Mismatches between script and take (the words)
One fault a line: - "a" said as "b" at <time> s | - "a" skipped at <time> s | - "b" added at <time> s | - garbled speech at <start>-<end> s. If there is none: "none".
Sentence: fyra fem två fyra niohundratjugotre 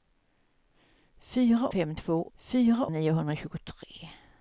none